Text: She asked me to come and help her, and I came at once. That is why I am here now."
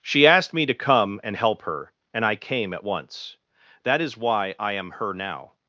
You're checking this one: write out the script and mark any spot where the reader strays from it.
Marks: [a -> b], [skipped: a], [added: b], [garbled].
She asked me to come and help her, and I came at once. That is why I am [here -> her] now."